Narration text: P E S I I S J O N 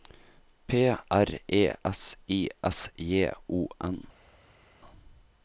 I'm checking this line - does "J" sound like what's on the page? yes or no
yes